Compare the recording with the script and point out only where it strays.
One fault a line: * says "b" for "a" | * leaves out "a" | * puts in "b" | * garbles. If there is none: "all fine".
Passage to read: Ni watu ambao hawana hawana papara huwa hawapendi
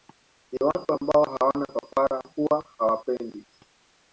* leaves out "hawana"